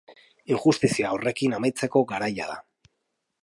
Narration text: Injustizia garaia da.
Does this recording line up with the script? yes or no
no